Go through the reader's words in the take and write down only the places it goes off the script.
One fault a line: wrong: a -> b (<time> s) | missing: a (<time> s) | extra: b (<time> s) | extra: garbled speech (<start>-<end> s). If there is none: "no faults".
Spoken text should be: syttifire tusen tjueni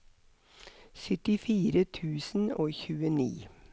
extra: og (2.6 s)